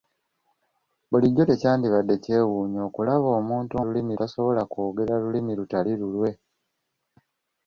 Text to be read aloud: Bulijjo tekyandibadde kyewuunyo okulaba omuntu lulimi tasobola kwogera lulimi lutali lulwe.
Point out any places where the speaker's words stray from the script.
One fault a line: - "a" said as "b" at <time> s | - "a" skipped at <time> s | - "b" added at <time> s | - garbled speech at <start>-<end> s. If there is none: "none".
none